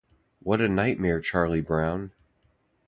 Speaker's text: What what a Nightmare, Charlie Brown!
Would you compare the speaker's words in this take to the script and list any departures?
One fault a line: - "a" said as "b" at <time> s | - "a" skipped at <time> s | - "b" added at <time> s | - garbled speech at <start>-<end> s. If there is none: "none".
- "what" skipped at 0.6 s